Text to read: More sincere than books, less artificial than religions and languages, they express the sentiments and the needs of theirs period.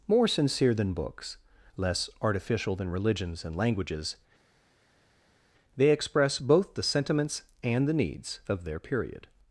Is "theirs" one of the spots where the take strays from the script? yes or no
yes